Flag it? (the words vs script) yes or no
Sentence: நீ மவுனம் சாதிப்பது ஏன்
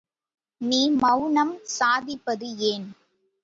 no